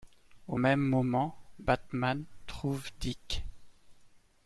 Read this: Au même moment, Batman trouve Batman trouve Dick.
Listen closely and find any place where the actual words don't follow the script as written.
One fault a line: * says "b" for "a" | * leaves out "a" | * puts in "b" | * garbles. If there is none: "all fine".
* leaves out "Batman trouve"